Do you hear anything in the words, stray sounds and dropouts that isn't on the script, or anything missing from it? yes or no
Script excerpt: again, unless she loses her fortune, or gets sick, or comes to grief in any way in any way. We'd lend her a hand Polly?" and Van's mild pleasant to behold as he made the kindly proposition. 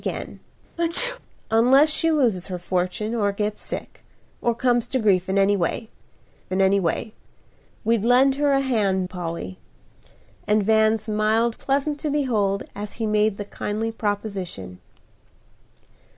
yes